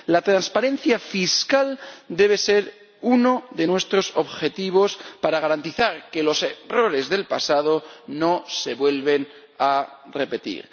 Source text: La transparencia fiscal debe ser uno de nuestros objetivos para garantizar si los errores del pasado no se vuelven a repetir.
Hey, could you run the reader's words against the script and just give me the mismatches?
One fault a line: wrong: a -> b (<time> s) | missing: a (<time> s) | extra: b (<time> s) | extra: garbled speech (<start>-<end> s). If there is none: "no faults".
wrong: si -> que (6.1 s)